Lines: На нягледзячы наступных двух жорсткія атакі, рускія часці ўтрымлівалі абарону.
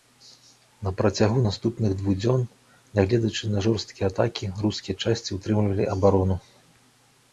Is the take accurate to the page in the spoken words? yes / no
no